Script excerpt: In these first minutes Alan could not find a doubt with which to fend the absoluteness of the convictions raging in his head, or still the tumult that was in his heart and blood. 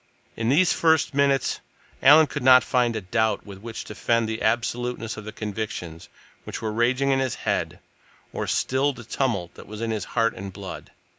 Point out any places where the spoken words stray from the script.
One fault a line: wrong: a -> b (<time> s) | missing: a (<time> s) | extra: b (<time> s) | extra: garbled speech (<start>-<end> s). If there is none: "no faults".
extra: which were (6.4 s)